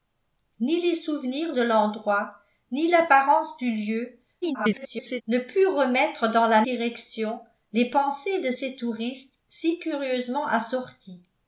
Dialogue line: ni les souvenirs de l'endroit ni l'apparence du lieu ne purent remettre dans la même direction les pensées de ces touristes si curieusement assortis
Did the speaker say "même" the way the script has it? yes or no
no